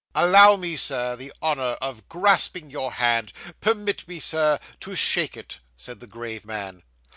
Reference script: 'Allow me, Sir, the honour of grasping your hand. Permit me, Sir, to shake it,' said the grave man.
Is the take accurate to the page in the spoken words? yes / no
yes